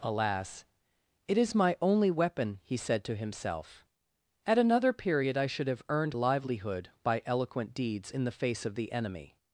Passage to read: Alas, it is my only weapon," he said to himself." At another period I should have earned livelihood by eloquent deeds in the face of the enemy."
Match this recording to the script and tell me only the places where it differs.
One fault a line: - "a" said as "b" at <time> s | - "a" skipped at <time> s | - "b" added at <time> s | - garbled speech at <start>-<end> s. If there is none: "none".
none